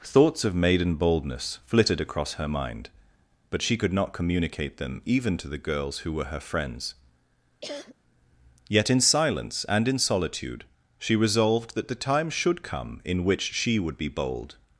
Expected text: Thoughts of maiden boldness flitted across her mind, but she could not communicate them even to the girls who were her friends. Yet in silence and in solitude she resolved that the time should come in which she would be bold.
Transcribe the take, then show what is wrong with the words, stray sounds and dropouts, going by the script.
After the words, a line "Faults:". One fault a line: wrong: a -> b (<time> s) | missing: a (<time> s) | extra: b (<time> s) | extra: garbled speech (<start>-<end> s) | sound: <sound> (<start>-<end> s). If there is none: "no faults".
Thoughts of maiden boldness flitted across her mind, but she could not communicate them even to the girls who were her friends. Yet in silence and in solitude she resolved that the time should come in which she would be bold.
Faults:
sound: cough (7.6-7.9 s)